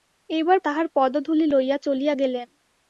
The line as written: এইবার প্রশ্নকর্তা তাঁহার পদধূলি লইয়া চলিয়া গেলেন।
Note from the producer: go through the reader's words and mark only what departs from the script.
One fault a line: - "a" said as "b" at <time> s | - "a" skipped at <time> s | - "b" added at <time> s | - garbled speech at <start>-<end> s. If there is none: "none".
- "প্রশ্নকর্তা" skipped at 0.6 s